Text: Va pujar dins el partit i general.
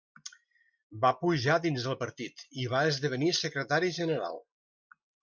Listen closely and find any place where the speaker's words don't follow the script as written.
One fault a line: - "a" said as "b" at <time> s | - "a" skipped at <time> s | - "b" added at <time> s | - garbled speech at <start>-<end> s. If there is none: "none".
- "va esdevenir secretari" added at 2.8 s